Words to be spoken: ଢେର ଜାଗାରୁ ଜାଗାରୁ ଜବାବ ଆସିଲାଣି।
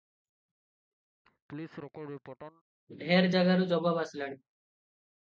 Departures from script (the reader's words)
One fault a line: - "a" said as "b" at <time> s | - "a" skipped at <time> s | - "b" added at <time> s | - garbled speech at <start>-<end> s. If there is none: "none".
- "ଜାଗାରୁ" skipped at 3.7 s